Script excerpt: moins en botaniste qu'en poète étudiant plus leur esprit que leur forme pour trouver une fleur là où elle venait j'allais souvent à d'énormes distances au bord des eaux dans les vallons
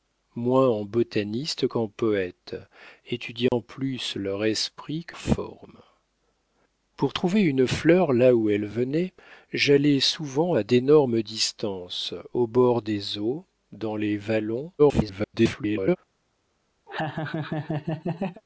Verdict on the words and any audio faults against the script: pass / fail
fail